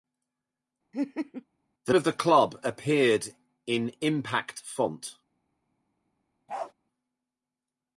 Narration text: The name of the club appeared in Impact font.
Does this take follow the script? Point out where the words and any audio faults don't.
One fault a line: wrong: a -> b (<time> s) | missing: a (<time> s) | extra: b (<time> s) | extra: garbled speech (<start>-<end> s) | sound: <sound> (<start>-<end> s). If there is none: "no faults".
sound: laugh (0.9-1.4 s)
missing: name (1.9 s)
sound: bark (6.5-6.7 s)